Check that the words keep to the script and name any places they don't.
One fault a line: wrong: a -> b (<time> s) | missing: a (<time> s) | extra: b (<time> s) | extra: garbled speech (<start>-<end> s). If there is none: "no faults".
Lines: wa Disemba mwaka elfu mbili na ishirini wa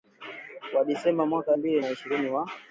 missing: elfu (1.6 s)